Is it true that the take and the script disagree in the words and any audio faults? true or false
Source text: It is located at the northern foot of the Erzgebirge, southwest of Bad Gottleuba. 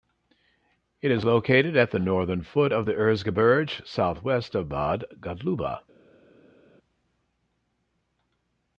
false